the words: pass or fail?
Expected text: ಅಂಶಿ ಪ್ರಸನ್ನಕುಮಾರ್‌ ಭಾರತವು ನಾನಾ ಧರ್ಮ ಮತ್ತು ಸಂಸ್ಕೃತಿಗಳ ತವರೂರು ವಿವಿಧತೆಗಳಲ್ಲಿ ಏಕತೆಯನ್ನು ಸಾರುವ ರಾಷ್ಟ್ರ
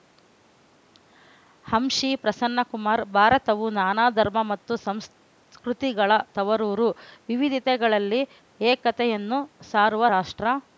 pass